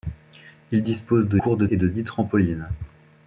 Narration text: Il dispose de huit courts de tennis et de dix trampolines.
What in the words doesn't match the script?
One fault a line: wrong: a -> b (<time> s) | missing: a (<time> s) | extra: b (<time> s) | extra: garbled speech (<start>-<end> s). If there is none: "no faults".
missing: huit (1.4 s)
missing: tennis (1.7 s)